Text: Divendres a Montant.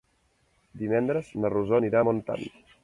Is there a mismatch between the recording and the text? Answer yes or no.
yes